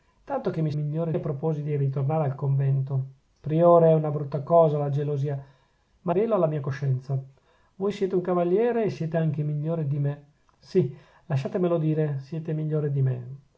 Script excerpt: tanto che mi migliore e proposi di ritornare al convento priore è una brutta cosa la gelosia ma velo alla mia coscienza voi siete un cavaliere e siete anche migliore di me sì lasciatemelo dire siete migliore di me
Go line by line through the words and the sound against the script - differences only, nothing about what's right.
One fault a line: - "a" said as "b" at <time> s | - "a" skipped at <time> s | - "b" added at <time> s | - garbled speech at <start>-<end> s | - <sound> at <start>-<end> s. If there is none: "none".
none